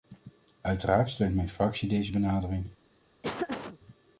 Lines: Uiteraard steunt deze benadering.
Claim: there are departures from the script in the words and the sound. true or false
true